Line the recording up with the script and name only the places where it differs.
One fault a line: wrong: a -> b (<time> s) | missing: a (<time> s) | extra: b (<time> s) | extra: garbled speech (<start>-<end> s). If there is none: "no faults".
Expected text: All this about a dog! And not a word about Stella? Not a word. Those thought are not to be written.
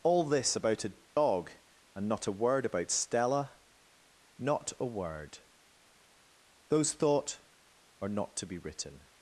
no faults